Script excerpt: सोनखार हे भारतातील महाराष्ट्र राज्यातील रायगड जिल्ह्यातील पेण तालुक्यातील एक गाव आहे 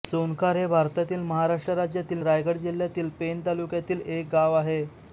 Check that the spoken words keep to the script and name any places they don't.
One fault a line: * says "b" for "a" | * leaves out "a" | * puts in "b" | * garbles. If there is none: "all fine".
all fine